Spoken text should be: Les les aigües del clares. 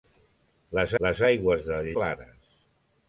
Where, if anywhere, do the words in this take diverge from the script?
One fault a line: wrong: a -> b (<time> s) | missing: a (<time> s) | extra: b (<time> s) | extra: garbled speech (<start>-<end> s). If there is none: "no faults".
no faults